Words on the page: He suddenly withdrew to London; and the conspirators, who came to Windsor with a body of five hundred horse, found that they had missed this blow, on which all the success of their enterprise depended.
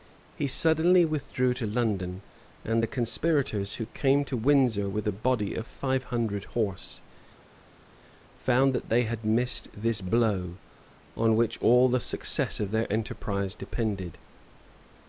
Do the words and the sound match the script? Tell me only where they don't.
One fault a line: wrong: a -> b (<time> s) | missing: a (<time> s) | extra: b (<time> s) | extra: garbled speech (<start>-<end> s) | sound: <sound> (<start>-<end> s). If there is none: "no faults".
no faults